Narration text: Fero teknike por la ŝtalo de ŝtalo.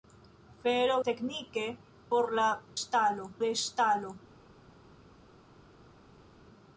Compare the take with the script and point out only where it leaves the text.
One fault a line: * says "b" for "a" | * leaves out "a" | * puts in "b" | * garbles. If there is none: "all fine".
all fine